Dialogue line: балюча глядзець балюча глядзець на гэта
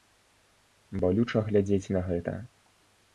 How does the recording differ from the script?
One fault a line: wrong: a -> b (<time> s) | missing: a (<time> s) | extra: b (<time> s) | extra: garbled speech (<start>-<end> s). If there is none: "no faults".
missing: балюча глядзець (1.9 s)